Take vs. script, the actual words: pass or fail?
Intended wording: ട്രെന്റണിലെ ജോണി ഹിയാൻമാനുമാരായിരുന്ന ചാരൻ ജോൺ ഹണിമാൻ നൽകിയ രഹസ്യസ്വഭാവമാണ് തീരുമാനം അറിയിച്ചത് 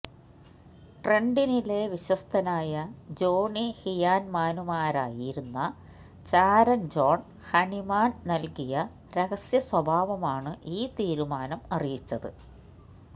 fail